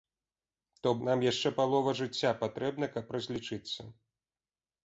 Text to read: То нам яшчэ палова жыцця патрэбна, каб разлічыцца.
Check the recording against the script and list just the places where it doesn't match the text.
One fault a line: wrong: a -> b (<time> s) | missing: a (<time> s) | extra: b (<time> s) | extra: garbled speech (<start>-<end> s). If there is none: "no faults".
no faults